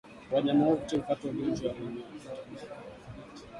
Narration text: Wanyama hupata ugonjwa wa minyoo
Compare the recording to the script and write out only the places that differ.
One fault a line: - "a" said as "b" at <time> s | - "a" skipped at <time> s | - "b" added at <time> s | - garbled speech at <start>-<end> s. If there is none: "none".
- "wote" added at 0.7 s